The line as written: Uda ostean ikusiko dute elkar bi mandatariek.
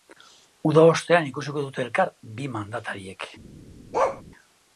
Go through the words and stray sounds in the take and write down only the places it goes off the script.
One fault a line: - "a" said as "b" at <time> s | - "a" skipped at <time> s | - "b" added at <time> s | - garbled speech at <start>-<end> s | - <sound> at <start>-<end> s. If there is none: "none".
- bark at 3.9-4.2 s